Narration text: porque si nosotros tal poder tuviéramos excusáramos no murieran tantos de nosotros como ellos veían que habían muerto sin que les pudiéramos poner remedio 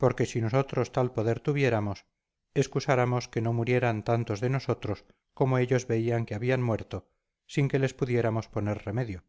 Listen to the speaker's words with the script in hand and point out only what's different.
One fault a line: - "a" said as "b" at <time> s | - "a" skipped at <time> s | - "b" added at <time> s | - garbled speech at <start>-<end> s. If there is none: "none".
- "que" added at 3.3 s